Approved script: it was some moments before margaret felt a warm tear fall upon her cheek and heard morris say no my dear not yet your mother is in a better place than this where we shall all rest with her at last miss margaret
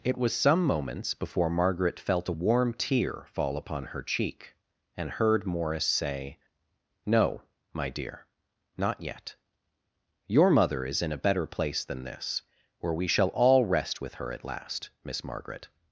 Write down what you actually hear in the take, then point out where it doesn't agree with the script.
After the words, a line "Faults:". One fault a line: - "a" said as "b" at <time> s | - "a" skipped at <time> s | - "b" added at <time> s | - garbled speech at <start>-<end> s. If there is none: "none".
it was some moments before margaret felt a warm tear fall upon her cheek and heard morris say no my dear not yet your mother is in a better place than this where we shall all rest with her at last miss margaret
Faults:
none